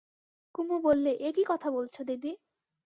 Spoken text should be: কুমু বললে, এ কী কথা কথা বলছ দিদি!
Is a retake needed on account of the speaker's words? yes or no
yes